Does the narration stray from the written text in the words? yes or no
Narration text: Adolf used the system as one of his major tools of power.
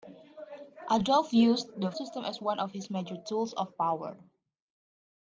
no